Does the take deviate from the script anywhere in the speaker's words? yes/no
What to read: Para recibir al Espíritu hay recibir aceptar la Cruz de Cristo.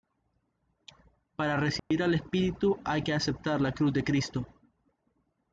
yes